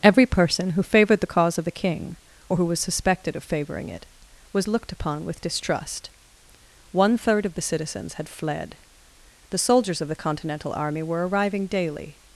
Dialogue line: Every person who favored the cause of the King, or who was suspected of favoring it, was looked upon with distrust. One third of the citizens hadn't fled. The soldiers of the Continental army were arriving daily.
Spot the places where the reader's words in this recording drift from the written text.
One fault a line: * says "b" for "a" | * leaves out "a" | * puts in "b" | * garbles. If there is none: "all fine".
* says "had" for "hadn't"